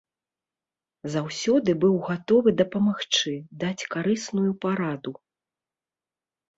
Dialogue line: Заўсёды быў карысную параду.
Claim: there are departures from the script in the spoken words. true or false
true